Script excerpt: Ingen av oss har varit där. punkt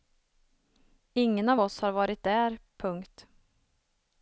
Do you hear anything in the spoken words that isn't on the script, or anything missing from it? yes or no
no